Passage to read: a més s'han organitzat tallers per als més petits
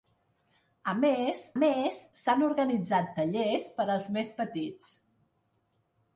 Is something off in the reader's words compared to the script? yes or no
yes